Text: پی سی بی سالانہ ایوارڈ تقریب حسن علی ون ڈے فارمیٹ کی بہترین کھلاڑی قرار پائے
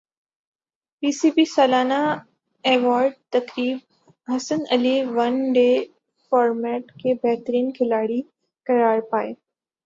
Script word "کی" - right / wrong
wrong